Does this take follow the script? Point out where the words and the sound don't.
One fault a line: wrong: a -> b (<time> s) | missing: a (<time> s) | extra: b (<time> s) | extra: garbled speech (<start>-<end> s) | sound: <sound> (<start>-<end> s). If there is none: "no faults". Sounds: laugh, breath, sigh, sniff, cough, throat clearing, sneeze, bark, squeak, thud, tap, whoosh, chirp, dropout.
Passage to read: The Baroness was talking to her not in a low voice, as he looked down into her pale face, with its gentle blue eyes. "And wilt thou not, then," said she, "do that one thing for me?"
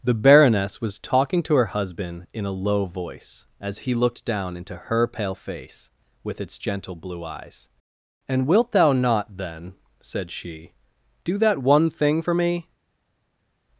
wrong: not -> husband (1.8 s)